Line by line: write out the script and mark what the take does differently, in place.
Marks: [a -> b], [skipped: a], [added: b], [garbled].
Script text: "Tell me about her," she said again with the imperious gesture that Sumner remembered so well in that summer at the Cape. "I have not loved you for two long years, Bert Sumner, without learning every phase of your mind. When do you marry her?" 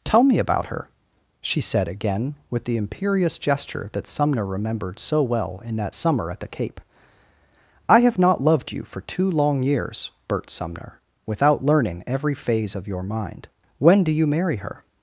"Tell me about her," she said again with the imperious gesture that Sumner remembered so well in that summer at the Cape. "I have not loved you for two long years, Bert Sumner, without learning every phase of your mind. When do you marry her?"